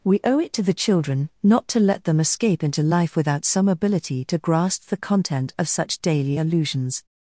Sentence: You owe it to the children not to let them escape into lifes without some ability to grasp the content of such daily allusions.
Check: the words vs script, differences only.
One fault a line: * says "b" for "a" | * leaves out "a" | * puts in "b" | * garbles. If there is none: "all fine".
* says "We" for "You"
* says "life" for "lifes"